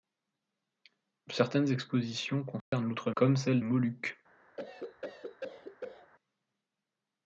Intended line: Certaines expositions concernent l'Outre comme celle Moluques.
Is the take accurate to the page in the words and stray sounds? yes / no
no